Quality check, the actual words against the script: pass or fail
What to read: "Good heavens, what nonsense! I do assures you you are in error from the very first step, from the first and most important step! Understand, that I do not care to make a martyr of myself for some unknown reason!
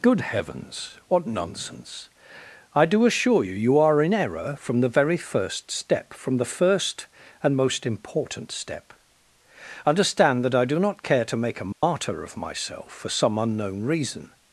fail